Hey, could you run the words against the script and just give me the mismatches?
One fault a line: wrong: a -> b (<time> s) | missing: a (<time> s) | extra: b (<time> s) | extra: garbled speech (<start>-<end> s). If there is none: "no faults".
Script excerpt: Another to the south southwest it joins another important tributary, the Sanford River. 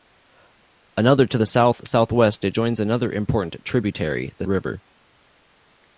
missing: Sanford (4.5 s)